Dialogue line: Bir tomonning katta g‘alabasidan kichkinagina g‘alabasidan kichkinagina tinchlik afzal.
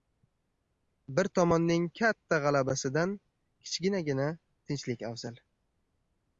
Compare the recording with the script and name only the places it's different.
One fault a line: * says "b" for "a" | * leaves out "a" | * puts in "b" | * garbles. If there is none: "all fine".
* leaves out "g‘alabasidan kichkinagina"